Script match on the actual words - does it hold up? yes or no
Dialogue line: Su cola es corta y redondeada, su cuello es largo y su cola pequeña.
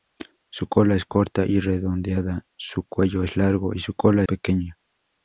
yes